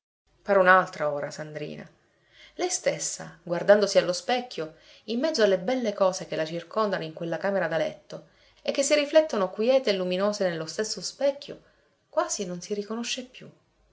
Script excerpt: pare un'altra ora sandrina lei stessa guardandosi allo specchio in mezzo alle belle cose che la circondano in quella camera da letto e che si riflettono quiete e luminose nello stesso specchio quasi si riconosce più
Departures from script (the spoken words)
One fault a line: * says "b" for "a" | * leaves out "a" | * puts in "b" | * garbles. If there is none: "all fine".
* puts in "non"